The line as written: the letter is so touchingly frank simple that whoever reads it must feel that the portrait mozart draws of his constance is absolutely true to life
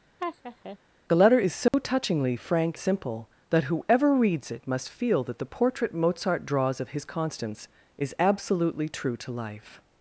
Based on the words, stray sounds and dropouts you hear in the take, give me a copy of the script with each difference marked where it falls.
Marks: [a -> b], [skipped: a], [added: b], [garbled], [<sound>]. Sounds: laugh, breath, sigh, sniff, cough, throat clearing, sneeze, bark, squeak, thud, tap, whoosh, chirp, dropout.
[laugh] the letter is so [dropout] touchingly frank simple that whoever reads it must feel that the portrait mozart draws of his constance is absolutely true to life